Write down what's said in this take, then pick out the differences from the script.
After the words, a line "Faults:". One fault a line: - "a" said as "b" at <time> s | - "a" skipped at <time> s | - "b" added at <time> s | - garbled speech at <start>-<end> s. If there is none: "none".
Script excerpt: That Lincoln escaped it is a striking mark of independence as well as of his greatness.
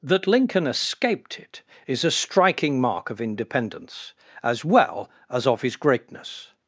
That Lincoln escaped it is a striking mark of independence as well as of his greatness.
Faults:
none